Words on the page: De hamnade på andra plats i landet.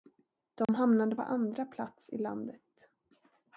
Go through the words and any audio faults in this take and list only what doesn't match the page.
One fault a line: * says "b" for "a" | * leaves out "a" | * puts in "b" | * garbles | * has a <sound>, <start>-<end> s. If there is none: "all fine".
* has a dropout, 0.6-0.7 s